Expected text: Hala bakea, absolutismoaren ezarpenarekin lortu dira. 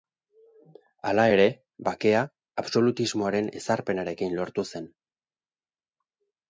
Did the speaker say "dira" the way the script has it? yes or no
no